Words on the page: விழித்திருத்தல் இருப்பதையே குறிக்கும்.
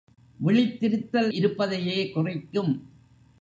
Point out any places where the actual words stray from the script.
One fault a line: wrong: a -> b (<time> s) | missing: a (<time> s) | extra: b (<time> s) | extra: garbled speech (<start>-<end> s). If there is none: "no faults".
no faults